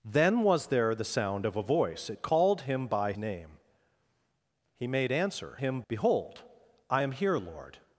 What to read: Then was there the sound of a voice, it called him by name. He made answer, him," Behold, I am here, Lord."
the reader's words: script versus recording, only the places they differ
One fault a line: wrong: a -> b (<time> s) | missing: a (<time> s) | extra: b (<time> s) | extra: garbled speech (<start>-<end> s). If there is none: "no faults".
no faults